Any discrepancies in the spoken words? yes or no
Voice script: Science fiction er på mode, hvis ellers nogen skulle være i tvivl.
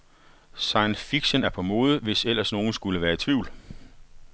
no